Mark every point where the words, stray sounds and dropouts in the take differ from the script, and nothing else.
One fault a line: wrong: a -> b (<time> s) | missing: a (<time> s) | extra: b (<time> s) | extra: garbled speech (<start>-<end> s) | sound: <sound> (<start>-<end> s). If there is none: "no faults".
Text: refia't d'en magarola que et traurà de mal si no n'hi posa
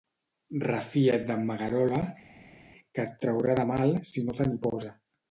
extra: te (4.4 s)